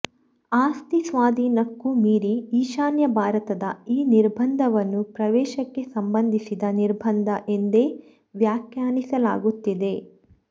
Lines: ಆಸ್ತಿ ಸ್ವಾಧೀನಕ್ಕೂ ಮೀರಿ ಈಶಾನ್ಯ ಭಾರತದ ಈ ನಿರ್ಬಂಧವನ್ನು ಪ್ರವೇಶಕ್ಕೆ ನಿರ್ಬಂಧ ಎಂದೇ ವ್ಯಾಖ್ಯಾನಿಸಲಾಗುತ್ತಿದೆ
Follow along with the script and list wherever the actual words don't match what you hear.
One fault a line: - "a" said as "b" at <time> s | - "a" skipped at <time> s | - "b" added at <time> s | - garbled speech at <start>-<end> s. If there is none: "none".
- "ಸಂಬಂಧಿಸಿದ" added at 5.9 s